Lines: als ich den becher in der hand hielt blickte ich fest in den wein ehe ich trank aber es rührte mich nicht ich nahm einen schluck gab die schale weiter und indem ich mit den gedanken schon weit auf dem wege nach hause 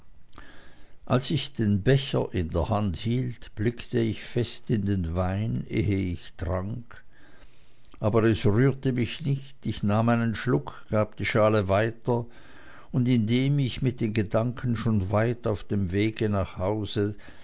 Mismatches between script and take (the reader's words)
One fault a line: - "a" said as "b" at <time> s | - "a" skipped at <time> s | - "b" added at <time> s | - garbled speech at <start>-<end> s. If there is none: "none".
none